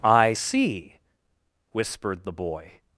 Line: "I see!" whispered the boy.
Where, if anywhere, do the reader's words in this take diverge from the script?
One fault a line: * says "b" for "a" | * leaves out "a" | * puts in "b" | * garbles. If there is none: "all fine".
all fine